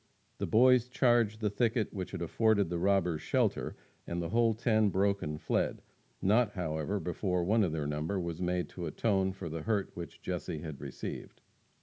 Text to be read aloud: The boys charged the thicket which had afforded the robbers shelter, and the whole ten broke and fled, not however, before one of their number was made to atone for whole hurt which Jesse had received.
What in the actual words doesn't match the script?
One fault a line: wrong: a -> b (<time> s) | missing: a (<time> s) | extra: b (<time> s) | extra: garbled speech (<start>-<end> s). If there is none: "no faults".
wrong: whole -> the (9.5 s)